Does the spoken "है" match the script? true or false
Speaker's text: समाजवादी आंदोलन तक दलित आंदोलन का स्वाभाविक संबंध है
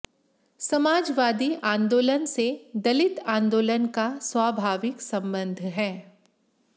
true